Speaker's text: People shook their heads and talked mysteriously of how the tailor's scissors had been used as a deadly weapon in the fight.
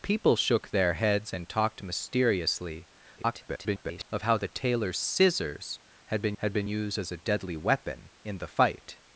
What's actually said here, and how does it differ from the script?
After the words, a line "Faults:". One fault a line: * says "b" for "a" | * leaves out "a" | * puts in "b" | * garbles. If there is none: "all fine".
People shook their heads and talked mysteriously [garbled] of how the tailor's scissors had been had been used as a deadly weapon in the fight.
Faults:
* garbles
* puts in "had been"